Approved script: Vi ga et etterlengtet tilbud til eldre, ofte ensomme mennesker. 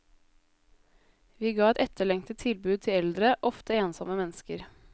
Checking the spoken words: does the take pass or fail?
pass